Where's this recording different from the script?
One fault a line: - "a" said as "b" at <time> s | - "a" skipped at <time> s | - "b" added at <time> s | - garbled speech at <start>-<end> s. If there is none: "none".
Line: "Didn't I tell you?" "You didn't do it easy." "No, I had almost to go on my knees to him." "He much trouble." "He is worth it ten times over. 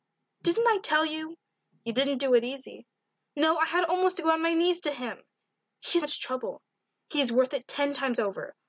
none